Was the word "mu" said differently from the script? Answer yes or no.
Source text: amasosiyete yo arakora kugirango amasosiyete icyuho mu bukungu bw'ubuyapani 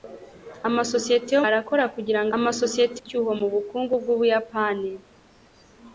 no